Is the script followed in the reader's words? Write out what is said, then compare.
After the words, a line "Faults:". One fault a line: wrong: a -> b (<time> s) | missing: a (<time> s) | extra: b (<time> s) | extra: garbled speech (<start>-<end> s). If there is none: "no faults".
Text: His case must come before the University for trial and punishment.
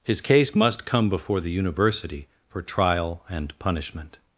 His case must come before the University for trial and punishment.
Faults:
no faults